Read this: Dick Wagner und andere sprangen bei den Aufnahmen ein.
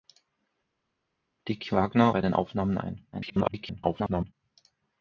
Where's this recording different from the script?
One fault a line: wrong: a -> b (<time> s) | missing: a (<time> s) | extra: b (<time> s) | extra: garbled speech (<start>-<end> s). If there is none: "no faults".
missing: und andere sprangen (2.1 s)
extra: garbled speech (3.1-4.3 s)